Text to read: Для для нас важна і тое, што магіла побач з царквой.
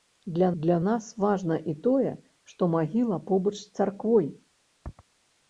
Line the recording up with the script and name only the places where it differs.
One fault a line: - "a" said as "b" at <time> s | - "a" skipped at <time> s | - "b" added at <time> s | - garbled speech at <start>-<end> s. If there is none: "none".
none